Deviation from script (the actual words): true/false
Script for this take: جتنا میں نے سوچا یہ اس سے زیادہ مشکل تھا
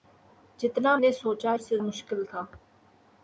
true